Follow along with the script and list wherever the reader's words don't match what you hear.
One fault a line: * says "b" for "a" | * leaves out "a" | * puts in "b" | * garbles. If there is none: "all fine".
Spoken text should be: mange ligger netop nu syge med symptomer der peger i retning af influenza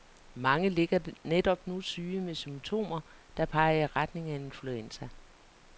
all fine